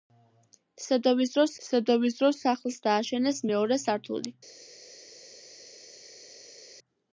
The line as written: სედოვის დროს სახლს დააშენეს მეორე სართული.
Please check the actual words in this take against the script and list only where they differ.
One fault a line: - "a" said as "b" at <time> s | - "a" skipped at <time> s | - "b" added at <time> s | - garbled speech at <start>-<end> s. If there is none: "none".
- "სედოვის დროს" added at 1.7 s